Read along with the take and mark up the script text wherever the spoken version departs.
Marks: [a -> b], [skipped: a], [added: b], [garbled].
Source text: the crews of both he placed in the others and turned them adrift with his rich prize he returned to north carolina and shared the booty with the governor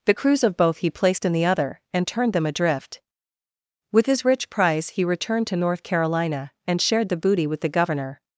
the crews of both he placed in the [others -> other] and turned them adrift with his rich prize he returned to north carolina and shared the booty with the governor